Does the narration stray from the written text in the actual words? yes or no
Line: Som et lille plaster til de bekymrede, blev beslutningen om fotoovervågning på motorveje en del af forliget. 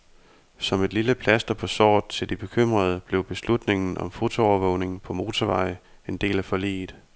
yes